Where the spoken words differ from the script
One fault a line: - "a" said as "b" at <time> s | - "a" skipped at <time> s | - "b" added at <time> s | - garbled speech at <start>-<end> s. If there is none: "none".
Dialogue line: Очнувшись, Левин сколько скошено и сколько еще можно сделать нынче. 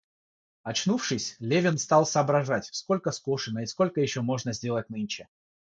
- "стал соображать" added at 1.8 s